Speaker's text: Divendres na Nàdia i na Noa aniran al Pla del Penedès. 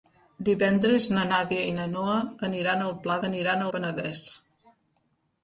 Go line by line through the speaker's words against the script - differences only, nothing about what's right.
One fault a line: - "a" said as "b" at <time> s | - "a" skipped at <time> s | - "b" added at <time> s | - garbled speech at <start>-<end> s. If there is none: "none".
- "del" said as "aniran" at 3.3 s